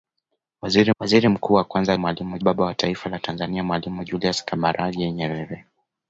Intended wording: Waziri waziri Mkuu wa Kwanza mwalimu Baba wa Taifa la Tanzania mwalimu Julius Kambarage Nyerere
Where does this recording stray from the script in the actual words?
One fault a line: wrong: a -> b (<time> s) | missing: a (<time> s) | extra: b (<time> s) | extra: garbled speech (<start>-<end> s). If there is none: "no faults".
no faults